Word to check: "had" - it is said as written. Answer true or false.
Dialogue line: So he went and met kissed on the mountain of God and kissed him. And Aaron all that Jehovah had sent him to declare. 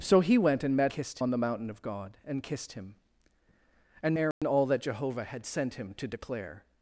true